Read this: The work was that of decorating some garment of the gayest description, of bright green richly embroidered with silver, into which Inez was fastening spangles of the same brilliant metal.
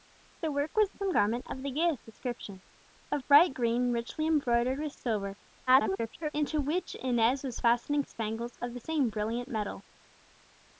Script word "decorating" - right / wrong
wrong